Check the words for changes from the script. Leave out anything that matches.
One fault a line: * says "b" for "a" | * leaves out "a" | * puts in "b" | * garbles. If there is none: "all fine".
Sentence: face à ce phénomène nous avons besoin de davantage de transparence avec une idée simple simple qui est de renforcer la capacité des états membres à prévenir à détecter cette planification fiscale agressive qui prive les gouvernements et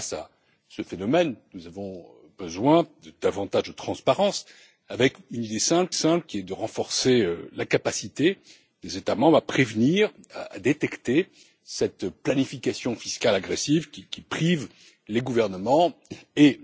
all fine